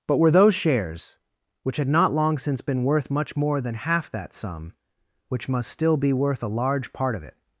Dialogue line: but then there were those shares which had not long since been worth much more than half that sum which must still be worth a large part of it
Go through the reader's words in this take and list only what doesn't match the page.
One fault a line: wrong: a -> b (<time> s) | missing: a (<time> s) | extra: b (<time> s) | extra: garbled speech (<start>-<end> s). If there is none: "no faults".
missing: then there (0.2 s)